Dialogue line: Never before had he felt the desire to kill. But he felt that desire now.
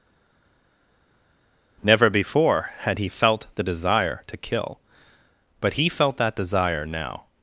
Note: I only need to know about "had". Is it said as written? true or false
true